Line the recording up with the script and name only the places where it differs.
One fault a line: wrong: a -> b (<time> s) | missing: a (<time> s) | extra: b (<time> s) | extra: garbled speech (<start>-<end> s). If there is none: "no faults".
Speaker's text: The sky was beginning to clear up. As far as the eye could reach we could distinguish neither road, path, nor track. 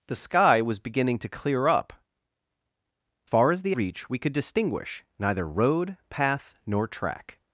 missing: As (1.9 s)
missing: eye could (3.8 s)